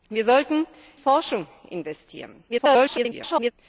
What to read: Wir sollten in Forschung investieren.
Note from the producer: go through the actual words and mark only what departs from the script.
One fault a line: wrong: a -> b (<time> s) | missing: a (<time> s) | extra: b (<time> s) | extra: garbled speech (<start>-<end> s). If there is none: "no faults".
missing: in (0.7 s)
extra: garbled speech (2.5-3.5 s)